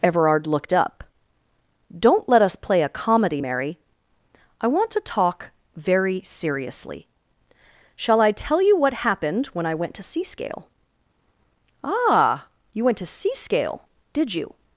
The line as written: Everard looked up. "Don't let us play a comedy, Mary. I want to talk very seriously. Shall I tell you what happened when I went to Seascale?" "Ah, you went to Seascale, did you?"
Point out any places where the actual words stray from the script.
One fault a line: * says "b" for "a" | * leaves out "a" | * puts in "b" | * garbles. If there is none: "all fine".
all fine